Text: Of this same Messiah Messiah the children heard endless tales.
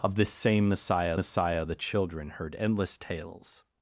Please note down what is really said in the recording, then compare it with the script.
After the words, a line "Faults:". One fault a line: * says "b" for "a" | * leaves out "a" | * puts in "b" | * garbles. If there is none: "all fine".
Of this same Messiah Messiah the children heard endless tales.
Faults:
all fine